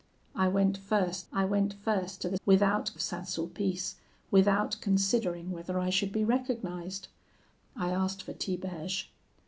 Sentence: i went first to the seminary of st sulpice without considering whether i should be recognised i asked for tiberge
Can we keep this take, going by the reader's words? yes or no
no